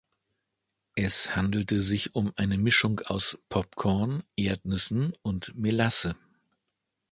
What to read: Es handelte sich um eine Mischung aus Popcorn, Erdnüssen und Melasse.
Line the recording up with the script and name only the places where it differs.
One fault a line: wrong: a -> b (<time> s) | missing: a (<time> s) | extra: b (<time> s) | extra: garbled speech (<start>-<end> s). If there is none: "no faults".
no faults